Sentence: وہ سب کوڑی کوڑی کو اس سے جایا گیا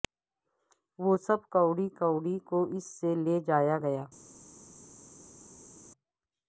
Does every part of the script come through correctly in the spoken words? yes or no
no